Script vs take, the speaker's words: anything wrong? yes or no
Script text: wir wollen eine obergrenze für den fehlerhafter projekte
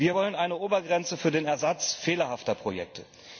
yes